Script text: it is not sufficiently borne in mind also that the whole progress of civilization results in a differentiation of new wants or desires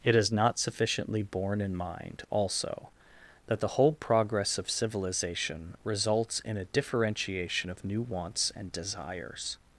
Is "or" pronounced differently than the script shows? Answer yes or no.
yes